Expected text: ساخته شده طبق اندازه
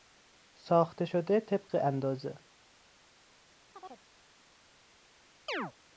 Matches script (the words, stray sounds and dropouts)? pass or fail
fail